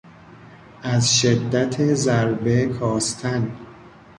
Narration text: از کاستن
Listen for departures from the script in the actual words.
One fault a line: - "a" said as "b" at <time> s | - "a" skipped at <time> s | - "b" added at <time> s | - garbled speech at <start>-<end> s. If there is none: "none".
- "شدت ضربه" added at 1.2 s